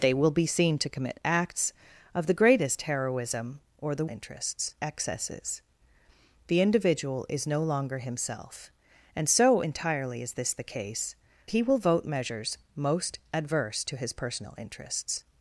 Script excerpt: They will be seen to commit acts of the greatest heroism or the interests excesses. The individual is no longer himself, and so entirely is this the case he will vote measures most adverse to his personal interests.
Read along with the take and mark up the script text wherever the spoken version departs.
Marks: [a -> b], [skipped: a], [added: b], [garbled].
They will be seen to commit acts of the greatest heroism or the interests excesses. The individual is no longer himself, and so entirely is this the case he will vote measures most adverse to his personal interests.